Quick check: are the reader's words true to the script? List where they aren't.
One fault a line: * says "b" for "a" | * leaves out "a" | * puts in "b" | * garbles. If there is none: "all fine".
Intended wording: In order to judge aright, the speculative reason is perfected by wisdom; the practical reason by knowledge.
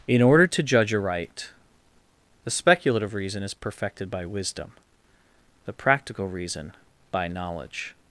all fine